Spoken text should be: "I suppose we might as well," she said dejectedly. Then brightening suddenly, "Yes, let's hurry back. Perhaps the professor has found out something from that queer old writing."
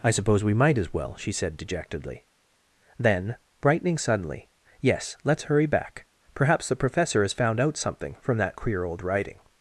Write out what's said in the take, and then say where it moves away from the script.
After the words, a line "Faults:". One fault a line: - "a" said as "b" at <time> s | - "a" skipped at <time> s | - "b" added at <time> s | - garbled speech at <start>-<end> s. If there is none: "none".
"I suppose we might as well," she said dejectedly. Then brightening suddenly, "Yes, let's hurry back. Perhaps the professor has found out something from that queer old writing."
Faults:
none